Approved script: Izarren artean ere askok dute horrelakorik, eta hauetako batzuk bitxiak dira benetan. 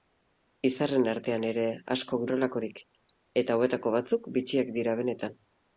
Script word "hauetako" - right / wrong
right